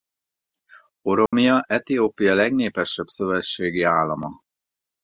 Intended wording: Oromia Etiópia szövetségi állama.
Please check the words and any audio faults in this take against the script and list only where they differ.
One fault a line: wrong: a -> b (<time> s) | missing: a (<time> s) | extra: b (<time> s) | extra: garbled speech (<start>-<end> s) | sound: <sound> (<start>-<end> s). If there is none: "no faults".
sound: dropout (1.3-1.3 s)
extra: legnépesebb (2.3 s)